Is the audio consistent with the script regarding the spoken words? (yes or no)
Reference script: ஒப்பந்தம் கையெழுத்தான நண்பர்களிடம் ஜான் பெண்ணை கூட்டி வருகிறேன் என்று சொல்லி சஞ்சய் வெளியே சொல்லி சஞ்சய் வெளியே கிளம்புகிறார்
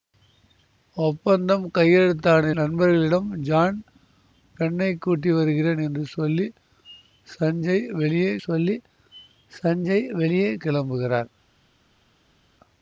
yes